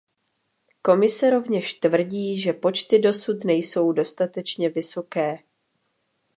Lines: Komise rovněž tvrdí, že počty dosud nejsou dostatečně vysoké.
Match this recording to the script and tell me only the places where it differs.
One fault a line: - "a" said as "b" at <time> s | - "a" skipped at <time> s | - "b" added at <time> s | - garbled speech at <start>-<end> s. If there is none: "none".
none